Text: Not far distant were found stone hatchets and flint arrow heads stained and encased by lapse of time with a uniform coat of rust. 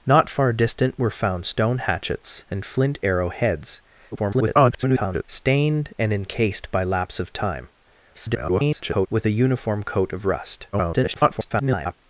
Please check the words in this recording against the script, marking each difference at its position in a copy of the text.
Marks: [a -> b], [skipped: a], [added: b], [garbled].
Not far distant were found stone hatchets and flint arrow heads [garbled] stained and encased by lapse of time [garbled] with a uniform coat of rust. [garbled]